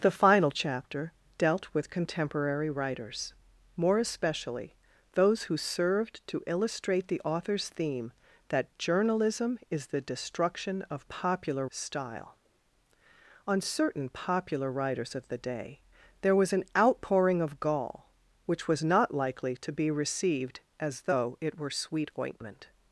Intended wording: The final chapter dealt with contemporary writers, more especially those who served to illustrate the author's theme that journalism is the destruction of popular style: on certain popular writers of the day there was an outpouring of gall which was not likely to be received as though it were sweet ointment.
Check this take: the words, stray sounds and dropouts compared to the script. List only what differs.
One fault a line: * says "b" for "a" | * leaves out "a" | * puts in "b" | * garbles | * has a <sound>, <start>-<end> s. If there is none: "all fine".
all fine